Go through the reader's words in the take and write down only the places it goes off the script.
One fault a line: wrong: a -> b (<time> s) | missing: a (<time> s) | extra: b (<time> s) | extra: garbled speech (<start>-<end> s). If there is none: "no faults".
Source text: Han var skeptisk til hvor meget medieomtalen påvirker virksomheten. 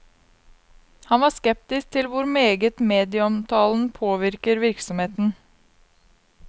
no faults